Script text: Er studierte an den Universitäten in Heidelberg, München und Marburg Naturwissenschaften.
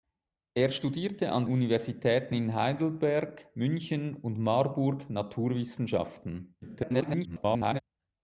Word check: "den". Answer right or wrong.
wrong